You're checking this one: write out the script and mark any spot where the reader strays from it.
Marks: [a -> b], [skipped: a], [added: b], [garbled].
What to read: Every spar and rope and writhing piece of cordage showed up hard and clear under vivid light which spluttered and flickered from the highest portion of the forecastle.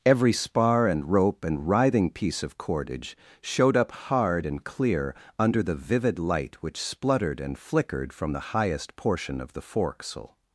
Every spar and rope and writhing piece of cordage showed up hard and clear under [added: the] vivid light which spluttered and flickered from the highest portion of the forecastle.